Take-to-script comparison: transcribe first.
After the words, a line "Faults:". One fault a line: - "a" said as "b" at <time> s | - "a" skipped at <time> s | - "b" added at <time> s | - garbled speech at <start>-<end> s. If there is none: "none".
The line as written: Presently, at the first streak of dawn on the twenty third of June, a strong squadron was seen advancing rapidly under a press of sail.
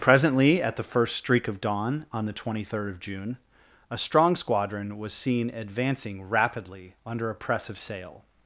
Presently, at the first streak of dawn on the twenty third of June, a strong squadron was seen advancing rapidly under a press of sail.
Faults:
none